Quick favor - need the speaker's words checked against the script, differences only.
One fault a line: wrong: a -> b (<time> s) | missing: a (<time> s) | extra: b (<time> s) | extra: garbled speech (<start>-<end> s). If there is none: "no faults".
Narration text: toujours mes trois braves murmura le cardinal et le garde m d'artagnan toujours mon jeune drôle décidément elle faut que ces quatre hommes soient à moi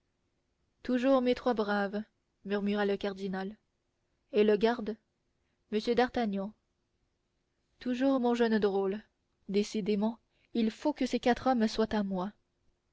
wrong: elle -> il (10.5 s)